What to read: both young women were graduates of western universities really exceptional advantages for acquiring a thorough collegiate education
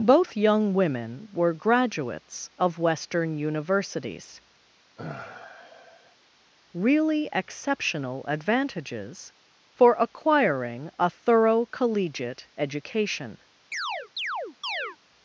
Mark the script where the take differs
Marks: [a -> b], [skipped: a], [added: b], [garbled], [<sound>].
both young women were graduates of western universities [sigh] really exceptional advantages for acquiring a thorough collegiate education [chirp]